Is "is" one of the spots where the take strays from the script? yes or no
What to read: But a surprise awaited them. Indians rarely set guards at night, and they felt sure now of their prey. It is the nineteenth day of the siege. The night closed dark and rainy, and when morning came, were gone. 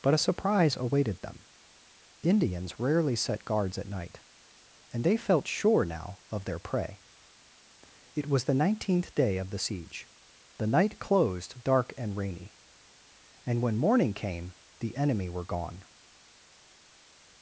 yes